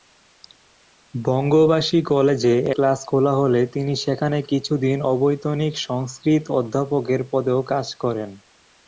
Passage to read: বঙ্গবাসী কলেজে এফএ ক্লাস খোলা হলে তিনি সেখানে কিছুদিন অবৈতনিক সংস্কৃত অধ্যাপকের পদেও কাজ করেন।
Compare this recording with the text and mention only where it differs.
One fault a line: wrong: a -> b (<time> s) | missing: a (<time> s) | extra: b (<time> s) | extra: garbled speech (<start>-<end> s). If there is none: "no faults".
missing: এফএ (2.5 s)